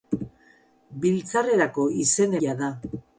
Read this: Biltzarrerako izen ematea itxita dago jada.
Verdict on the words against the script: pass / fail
fail